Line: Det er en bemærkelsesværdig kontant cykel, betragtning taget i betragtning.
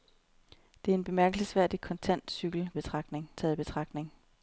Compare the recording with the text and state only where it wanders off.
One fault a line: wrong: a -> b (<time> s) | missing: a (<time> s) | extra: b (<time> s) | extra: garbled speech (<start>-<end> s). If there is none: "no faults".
no faults